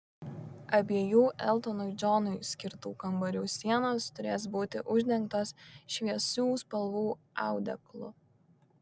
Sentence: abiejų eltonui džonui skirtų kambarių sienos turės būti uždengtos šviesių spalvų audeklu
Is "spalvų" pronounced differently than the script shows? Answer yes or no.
no